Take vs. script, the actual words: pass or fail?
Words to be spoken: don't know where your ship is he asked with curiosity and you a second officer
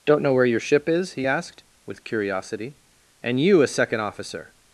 pass